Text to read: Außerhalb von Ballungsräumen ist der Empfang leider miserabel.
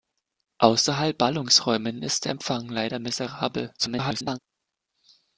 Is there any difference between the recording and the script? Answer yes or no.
yes